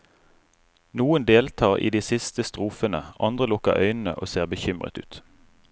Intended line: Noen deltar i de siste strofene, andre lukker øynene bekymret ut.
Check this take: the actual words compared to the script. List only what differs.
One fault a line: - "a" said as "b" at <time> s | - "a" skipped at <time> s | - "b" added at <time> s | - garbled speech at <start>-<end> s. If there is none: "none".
- "og ser" added at 4.2 s